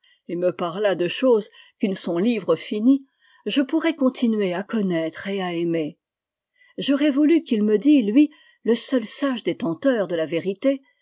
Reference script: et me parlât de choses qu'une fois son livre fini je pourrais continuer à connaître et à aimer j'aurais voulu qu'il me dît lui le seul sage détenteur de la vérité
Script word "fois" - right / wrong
wrong